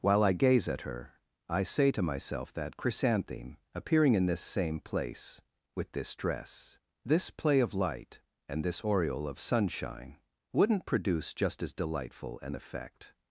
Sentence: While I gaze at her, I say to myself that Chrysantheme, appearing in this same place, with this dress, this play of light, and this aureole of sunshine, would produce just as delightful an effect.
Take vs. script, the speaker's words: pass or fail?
fail